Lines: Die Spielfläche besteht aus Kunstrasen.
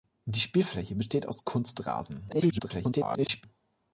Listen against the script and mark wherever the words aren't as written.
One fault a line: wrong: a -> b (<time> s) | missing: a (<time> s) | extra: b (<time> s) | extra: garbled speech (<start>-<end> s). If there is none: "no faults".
extra: garbled speech (2.3-3.4 s)